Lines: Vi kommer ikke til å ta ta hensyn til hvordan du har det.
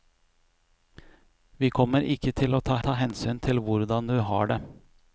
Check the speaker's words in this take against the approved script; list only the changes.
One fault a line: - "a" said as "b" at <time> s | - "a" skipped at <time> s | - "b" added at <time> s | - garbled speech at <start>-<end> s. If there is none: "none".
none